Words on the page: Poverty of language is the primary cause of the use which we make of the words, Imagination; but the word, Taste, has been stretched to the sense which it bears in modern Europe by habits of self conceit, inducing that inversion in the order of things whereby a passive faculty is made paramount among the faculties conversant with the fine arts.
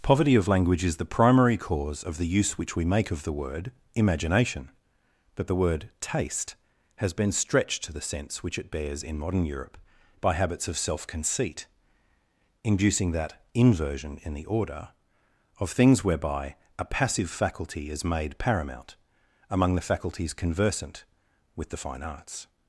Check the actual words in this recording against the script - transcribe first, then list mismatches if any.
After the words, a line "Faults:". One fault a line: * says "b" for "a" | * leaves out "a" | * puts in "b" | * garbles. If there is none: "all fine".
Poverty of language is the primary cause of the use which we make of the word, Imagination; but the word, Taste, has been stretched to the sense which it bears in modern Europe by habits of self conceit, inducing that inversion in the order of things whereby a passive faculty is made paramount among the faculties conversant with the fine arts.
Faults:
* says "word" for "words"